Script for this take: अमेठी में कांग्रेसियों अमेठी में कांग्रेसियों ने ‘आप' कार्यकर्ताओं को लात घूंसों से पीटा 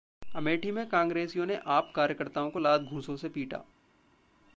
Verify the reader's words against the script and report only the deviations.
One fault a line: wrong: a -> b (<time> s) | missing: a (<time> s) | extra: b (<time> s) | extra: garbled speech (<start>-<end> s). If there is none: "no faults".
missing: अमेठी में कांग्रेसियों (1.4 s)